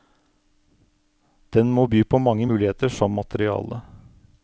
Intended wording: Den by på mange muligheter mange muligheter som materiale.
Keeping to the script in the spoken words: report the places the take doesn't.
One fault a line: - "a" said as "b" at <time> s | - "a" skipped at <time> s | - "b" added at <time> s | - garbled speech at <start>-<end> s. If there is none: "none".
- "må" added at 1.7 s
- "mange muligheter" skipped at 2.9 s